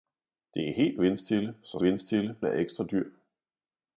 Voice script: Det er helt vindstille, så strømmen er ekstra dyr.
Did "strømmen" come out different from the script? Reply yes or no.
yes